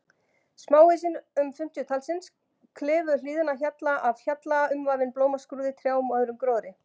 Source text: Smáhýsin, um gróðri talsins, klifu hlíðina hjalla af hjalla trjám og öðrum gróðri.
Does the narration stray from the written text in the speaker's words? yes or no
yes